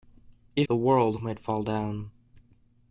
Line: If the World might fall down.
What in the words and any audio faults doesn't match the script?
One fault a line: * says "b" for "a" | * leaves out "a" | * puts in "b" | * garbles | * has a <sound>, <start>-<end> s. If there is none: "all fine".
all fine